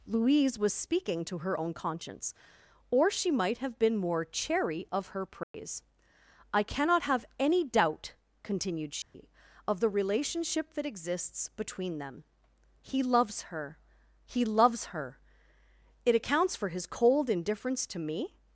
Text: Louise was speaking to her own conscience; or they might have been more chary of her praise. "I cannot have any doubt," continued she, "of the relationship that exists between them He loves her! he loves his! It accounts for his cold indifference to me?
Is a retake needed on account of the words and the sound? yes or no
yes